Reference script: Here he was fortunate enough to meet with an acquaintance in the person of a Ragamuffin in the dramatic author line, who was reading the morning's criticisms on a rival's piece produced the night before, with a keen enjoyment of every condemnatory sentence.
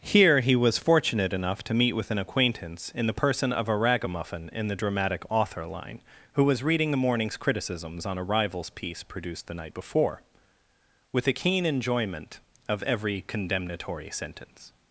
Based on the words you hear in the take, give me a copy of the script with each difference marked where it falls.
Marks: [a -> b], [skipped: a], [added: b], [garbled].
Here he was fortunate enough to meet with an acquaintance in the person of a Ragamuffin in the dramatic author line, who was reading the morning's criticisms on a rival's piece produced the night before, with a keen enjoyment of every condemnatory sentence.